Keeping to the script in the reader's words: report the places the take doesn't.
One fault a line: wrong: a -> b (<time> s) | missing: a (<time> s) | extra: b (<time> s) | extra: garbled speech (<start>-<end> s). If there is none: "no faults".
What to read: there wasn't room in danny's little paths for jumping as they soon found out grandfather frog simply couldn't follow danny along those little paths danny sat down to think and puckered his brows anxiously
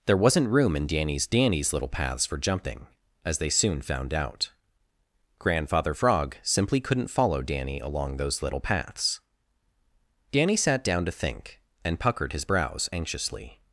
extra: danny's (1.3 s)